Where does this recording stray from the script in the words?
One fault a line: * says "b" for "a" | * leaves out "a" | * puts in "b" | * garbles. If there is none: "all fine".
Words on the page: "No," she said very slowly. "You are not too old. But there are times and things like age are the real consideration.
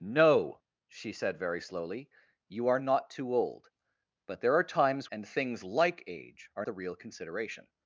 all fine